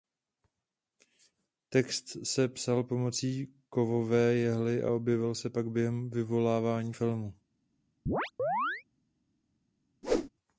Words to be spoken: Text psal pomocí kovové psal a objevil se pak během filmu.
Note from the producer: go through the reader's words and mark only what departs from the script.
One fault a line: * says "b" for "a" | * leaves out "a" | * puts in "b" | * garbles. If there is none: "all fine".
* puts in "se"
* says "jehly" for "psal"
* puts in "vyvolávání"